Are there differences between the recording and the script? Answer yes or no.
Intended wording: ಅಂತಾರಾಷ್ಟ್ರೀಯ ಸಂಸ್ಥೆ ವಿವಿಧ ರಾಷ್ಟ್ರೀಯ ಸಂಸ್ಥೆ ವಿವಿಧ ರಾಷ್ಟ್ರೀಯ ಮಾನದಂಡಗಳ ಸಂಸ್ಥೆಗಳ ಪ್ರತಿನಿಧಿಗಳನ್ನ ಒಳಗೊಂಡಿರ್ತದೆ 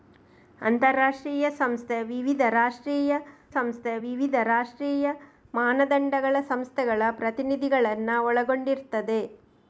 no